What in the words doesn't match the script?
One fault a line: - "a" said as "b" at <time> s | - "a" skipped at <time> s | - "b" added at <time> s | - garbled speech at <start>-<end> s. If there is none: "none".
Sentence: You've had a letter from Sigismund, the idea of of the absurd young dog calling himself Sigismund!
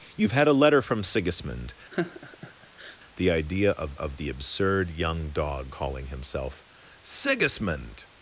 none